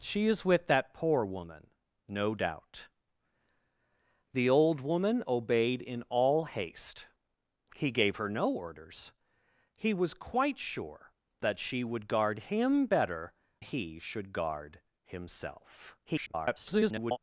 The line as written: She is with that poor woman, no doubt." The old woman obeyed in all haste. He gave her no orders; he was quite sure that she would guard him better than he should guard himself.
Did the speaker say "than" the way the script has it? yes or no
no